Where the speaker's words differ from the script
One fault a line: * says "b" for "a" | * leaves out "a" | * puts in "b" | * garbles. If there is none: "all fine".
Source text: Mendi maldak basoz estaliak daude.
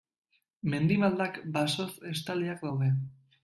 all fine